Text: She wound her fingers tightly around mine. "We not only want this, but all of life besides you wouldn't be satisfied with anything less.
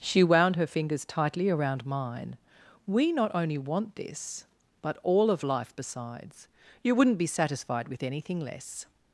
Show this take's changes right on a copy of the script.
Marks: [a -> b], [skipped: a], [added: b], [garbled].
She wound her fingers tightly around mine. "We not only want this, but all of life besides you wouldn't be satisfied with anything less.